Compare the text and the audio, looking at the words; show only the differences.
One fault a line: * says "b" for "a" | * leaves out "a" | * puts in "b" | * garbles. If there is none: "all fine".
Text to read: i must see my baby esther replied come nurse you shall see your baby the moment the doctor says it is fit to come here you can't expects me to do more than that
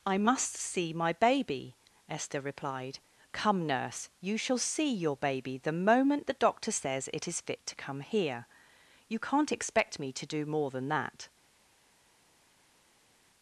* says "expect" for "expects"